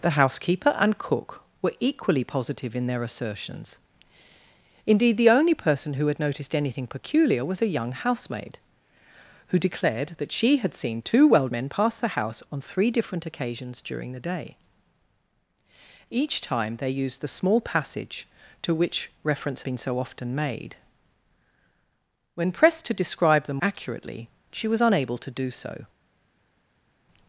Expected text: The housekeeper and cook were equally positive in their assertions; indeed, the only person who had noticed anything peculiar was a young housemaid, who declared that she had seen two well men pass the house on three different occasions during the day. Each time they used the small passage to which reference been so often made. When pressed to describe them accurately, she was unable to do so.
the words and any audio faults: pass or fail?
pass